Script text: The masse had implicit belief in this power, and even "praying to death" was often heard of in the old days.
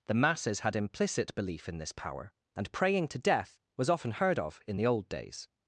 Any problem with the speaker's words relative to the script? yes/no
yes